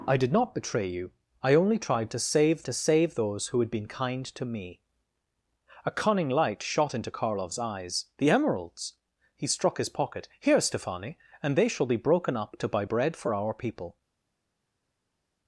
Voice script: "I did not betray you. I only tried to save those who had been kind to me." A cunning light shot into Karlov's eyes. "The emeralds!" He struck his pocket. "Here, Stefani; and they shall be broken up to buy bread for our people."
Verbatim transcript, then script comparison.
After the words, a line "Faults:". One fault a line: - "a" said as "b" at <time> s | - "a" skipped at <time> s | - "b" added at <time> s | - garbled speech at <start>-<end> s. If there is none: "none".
"I did not betray you. I only tried to save to save those who had been kind to me." A cunning light shot into Karlov's eyes. "The emeralds!" He struck his pocket. "Here, Stefani; and they shall be broken up to buy bread for our people."
Faults:
- "to save" added at 2.6 s